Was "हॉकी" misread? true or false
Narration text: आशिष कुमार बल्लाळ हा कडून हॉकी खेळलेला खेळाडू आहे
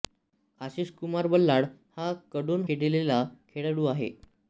true